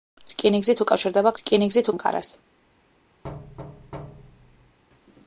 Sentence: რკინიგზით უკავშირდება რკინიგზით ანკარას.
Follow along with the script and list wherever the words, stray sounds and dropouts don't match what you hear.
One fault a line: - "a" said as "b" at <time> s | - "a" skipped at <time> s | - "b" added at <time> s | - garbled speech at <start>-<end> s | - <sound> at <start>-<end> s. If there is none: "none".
- thud at 3.2-4.8 s